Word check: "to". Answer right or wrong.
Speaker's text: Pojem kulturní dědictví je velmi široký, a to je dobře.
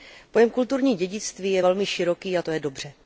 right